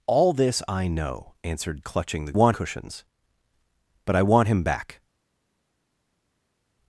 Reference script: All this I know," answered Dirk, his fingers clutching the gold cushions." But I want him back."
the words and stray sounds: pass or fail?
fail